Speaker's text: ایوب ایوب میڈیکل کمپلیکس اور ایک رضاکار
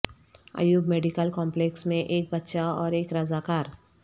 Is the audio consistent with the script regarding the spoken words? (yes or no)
no